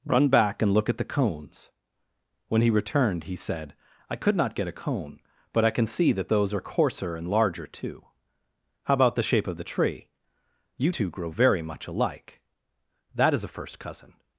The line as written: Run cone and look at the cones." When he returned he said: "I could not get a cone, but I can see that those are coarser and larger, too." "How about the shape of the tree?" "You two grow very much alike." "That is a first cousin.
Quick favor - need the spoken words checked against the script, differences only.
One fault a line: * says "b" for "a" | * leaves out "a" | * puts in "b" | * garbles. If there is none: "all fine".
* says "back" for "cone"